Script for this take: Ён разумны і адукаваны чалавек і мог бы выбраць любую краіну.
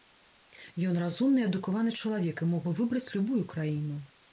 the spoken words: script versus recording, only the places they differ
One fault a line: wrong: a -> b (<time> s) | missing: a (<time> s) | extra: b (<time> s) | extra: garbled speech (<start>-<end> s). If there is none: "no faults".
no faults